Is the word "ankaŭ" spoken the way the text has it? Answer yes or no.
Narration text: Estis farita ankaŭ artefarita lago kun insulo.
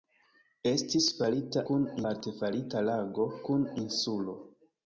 no